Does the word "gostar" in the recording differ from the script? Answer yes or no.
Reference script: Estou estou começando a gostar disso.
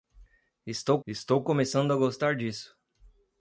no